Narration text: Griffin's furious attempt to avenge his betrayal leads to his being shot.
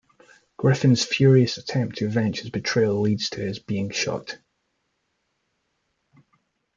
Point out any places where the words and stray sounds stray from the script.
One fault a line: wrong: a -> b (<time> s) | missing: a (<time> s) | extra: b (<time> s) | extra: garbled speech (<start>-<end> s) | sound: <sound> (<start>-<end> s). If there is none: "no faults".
no faults